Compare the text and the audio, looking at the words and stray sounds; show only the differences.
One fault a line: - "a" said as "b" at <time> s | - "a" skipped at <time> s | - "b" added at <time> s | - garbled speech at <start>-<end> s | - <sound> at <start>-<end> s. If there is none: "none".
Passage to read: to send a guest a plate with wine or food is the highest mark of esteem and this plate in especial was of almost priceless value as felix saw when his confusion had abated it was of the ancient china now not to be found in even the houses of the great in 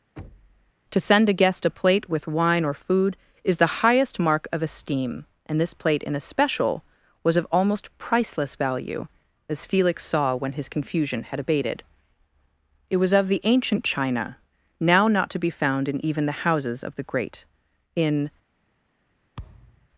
- thud at 0.2-0.7 s
- thud at 19.4-19.9 s